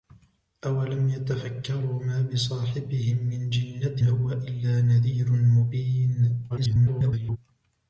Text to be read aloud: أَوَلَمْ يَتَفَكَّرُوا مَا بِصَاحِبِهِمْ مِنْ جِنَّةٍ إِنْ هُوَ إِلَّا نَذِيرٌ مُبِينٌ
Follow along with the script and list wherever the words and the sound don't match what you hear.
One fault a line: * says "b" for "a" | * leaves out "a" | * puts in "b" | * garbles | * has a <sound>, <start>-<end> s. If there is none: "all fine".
* leaves out "إِنْ"
* garbles